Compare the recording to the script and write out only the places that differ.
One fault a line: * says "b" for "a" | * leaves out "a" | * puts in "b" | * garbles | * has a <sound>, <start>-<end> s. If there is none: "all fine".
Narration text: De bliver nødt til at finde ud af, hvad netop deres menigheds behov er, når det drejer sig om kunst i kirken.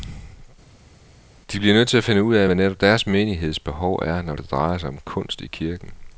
all fine